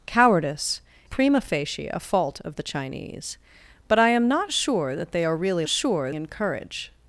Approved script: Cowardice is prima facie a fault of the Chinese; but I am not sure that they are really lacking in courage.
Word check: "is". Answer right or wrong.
wrong